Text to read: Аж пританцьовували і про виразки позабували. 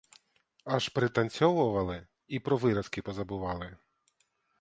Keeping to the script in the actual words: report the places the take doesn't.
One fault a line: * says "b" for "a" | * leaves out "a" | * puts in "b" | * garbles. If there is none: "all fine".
all fine